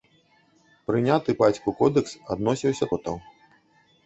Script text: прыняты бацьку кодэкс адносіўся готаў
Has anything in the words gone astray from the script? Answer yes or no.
no